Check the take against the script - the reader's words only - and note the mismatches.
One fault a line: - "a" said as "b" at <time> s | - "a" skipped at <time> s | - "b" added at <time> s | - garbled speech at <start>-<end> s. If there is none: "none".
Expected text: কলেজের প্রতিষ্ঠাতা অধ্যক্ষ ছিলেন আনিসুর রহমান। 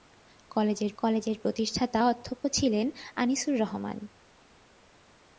- "কলেজের" added at 1.0 s